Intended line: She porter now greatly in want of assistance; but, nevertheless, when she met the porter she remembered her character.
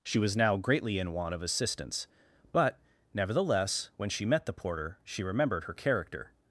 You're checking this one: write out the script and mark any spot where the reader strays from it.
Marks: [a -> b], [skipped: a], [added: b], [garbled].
She [porter -> was] now greatly in want of assistance; but, nevertheless, when she met the porter she remembered her character.